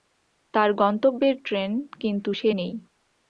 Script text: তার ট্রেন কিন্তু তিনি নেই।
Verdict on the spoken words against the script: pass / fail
fail